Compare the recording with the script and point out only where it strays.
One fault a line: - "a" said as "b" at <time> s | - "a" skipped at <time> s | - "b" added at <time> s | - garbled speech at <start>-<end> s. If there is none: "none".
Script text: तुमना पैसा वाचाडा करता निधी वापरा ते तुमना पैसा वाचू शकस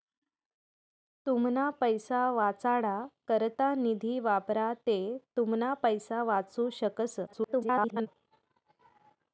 - garbled speech at 7.3-8.1 s